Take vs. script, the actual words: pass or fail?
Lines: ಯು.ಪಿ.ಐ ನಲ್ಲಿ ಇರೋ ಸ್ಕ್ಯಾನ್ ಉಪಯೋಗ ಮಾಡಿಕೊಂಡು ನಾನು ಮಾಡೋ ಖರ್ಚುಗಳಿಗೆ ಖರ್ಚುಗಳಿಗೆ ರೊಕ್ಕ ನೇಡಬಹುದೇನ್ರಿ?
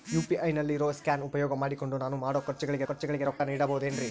pass